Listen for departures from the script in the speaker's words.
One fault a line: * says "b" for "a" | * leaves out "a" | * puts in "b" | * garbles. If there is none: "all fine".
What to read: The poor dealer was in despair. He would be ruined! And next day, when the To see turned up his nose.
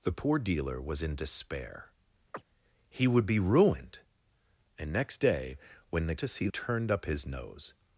all fine